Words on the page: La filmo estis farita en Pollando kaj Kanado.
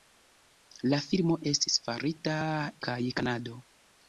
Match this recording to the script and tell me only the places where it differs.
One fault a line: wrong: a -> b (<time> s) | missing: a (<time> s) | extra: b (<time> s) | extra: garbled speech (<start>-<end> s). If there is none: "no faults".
missing: en Pollando (2.4 s)